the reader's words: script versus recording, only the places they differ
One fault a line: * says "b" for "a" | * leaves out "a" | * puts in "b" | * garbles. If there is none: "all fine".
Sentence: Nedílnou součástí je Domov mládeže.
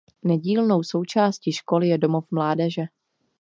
* puts in "školy"